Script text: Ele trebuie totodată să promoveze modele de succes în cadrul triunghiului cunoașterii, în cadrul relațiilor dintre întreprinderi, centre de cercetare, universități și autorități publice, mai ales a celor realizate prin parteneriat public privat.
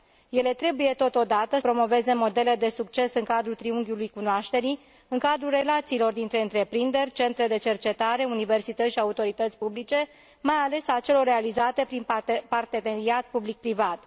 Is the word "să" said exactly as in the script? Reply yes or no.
no